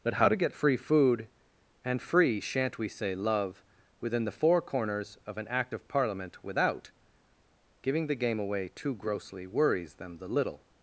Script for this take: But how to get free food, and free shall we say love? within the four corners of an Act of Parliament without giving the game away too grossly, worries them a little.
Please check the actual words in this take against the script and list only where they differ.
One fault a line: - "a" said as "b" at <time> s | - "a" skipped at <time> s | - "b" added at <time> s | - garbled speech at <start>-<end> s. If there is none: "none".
- "shall" said as "shan't" at 2.4 s
- "a" said as "the" at 10.2 s